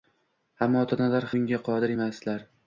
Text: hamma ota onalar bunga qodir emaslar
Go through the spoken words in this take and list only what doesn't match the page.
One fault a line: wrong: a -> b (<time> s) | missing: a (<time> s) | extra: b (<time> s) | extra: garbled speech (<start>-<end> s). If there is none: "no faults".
no faults